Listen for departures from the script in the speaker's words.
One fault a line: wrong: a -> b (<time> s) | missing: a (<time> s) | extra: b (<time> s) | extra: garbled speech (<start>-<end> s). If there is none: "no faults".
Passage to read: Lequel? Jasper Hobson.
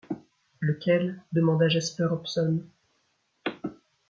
extra: demanda (1.3 s)